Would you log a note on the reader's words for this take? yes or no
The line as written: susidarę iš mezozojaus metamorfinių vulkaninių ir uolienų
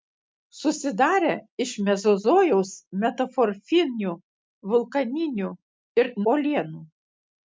no